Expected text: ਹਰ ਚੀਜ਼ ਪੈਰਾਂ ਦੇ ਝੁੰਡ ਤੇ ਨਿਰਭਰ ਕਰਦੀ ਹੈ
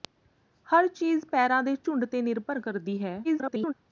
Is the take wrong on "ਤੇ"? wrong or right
right